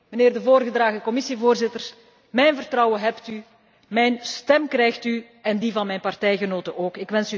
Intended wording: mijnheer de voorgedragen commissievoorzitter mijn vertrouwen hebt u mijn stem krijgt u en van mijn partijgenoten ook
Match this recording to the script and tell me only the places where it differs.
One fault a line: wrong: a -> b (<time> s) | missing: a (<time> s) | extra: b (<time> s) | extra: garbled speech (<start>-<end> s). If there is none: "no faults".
extra: die (5.6 s)